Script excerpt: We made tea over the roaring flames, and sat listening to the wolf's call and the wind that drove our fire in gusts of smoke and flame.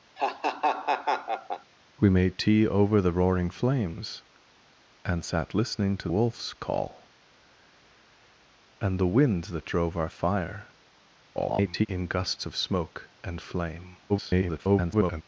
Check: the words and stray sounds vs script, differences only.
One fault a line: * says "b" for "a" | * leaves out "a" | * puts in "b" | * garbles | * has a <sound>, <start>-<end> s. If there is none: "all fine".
* has a laugh, 0.2-1.7 s
* leaves out "the"
* garbles
* garbles